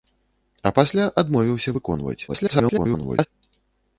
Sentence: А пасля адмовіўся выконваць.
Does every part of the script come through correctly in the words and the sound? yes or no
no